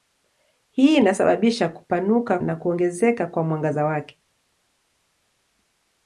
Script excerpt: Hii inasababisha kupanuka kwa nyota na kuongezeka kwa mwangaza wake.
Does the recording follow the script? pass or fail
fail